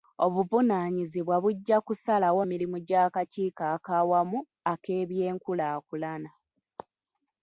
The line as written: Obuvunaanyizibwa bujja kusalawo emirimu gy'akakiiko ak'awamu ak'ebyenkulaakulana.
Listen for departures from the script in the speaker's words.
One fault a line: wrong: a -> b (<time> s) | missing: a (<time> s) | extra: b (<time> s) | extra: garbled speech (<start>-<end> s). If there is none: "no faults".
no faults